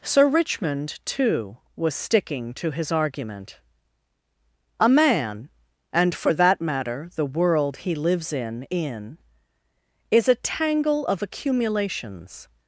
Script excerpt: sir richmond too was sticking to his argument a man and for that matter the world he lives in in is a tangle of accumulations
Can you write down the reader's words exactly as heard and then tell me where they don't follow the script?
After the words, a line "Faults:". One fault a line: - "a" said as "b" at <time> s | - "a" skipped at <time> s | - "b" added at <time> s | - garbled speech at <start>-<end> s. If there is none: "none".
sir richmond too was sticking to his argument a man and for that matter the world he lives in in is a tangle of accumulations
Faults:
none